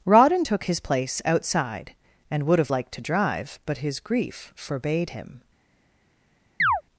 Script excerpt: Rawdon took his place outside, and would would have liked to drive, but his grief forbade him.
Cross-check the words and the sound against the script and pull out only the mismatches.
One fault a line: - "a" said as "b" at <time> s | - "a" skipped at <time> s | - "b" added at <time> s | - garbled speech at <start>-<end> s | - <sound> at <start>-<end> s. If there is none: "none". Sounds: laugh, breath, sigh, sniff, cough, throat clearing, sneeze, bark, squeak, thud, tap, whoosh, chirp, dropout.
- "would" skipped at 2.6 s
- chirp at 6.6-6.8 s